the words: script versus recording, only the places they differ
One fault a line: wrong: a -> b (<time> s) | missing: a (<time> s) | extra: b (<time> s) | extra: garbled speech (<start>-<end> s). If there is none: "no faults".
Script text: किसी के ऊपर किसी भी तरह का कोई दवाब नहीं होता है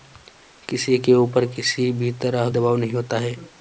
missing: का कोई (2.5 s)